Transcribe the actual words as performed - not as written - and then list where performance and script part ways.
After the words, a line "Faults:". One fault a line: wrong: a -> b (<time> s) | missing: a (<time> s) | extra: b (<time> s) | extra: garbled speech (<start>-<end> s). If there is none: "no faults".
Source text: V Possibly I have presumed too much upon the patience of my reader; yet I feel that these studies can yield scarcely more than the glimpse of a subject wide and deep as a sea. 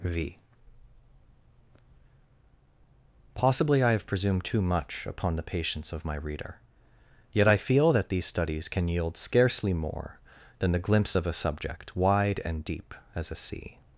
V Possibly I have presumed too much upon the patience of my reader; yet I feel that these studies can yield scarcely more than the glimpse of a subject wide and deep as a sea.
Faults:
no faults